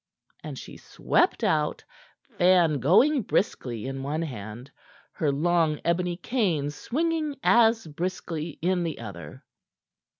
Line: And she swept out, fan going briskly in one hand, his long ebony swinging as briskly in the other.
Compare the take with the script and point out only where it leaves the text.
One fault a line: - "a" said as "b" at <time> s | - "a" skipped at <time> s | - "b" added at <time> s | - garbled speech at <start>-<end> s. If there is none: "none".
- "his" said as "her" at 5.1 s
- "cane" added at 6.2 s